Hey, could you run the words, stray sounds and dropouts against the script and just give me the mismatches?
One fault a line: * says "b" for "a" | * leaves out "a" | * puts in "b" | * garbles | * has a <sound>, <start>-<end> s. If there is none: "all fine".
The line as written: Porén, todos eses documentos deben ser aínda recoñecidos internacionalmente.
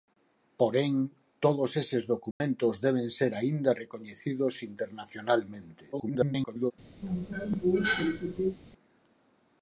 * has a dropout, 2.3-2.4 s
* garbles
* has a cough, 7.0-8.6 s